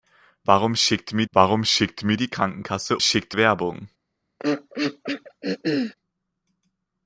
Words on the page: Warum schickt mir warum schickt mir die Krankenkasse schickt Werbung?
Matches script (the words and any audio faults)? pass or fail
fail